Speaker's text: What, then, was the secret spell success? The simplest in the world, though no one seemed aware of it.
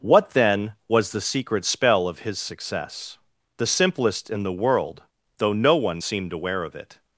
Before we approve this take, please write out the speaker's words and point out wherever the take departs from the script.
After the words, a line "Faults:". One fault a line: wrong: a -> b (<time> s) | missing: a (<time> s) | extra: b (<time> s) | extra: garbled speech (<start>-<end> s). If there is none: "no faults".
What, then, was the secret spell of his success? The simplest in the world, though no one seemed aware of it.
Faults:
extra: of his (2.1 s)